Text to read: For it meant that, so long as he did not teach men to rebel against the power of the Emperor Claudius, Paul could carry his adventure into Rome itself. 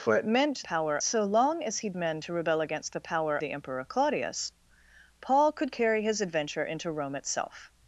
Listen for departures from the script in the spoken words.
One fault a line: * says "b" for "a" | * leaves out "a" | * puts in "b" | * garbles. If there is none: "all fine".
* says "power" for "that"
* leaves out "did not teach"
* leaves out "of"